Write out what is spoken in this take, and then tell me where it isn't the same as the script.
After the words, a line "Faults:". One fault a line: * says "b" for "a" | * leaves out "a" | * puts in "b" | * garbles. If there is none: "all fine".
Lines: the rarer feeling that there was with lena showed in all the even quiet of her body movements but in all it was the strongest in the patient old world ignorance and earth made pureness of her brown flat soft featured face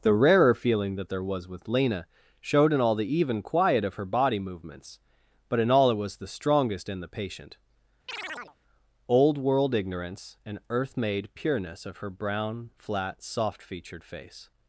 the rarer feeling that there was with lena showed in all the even quiet of her body movements but in all it was the strongest in the patient old world ignorance and earth made pureness of her brown flat soft featured face
Faults:
all fine